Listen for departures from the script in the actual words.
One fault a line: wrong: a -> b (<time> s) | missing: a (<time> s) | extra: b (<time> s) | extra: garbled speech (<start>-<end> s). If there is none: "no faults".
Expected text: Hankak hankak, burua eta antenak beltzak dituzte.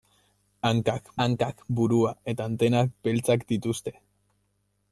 no faults